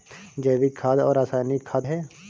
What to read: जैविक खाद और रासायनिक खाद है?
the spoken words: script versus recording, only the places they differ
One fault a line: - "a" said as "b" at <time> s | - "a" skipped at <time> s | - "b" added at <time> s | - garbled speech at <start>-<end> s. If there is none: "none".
none